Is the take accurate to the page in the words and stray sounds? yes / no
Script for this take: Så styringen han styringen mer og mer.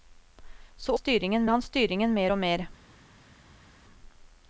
yes